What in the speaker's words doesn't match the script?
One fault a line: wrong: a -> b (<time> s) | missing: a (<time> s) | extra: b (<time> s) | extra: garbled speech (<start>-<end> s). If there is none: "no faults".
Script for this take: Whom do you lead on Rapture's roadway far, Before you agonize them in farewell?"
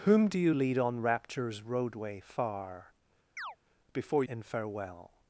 missing: you agonize them (4.2 s)